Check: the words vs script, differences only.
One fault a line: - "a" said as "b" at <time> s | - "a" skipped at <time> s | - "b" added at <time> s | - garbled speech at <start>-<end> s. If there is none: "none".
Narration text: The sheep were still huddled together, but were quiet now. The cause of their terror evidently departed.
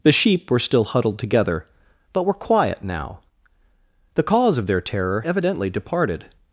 none